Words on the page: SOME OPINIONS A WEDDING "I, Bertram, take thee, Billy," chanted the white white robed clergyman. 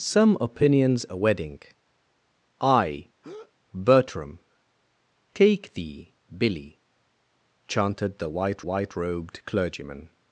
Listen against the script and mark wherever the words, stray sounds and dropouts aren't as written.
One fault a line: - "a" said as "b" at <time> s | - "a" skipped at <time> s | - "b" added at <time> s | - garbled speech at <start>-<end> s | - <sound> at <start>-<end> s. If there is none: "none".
- breath at 3.2-3.5 s